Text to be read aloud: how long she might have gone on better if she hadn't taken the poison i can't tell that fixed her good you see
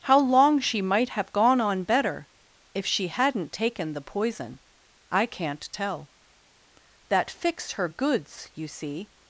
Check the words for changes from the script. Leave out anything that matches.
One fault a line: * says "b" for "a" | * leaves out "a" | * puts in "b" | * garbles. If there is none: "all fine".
* says "goods" for "good"